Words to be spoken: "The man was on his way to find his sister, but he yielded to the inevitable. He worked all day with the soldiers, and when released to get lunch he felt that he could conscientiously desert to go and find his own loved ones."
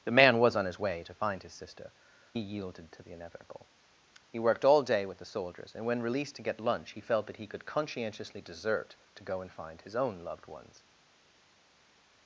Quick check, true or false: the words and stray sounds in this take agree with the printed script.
false